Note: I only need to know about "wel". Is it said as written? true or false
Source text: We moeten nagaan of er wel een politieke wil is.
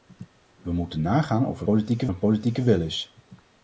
false